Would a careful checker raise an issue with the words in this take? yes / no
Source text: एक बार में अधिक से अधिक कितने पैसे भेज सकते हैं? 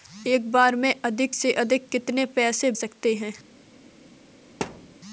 yes